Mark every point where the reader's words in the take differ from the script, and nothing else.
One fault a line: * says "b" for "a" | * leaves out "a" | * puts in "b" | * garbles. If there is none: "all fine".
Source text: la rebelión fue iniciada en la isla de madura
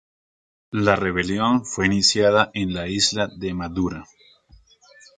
all fine